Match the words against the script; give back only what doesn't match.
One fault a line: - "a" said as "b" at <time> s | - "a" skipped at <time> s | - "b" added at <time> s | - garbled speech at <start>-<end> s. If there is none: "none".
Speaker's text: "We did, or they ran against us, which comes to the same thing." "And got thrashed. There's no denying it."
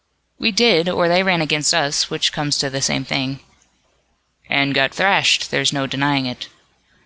none